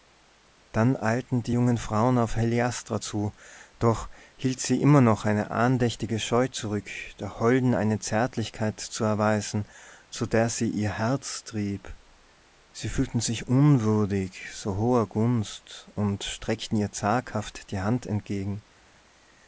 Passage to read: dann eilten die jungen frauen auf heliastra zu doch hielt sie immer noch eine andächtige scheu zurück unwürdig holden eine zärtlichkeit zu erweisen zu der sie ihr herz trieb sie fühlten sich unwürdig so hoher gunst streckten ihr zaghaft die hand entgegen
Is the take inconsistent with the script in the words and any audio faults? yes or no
yes